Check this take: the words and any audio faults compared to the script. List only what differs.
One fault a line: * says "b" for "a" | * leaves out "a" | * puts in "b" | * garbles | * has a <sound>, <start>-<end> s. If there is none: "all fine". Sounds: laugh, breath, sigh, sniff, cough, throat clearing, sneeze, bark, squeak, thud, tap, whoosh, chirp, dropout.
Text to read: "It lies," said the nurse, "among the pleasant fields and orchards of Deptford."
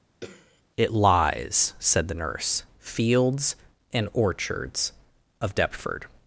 * has a throat clearing, 0.2-0.6 s
* leaves out "among the pleasant"